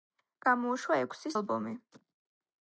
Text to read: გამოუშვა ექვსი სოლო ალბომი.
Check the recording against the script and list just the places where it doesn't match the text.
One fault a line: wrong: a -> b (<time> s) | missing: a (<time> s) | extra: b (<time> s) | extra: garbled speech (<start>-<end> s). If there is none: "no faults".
missing: სოლო (1.3 s)